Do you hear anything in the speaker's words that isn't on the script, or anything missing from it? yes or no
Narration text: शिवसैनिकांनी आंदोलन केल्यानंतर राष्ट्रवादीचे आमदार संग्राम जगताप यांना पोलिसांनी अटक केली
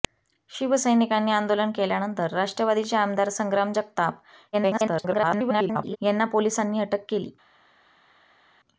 yes